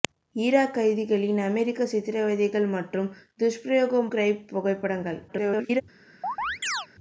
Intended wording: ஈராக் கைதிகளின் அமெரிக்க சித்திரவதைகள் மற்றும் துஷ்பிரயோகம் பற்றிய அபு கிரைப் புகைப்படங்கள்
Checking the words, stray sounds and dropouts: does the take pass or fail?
fail